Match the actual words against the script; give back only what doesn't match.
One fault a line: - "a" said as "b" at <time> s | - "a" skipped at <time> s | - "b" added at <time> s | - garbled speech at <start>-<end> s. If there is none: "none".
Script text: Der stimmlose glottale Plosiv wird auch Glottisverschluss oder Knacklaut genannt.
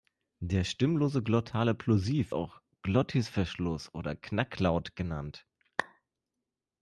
- "wird" skipped at 2.4 s